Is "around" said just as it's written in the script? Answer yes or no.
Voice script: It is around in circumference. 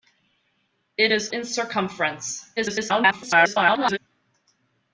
no